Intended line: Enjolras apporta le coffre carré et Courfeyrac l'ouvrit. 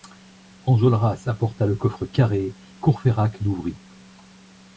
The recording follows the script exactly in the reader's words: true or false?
false